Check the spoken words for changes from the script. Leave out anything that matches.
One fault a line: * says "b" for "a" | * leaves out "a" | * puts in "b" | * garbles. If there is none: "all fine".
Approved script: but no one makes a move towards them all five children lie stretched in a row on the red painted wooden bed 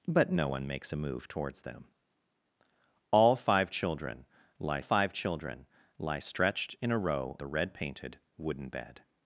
* puts in "five children lie"
* leaves out "on"